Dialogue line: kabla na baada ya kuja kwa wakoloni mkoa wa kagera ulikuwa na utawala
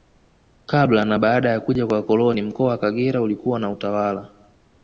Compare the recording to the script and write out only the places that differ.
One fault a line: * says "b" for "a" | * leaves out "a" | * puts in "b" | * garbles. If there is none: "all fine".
all fine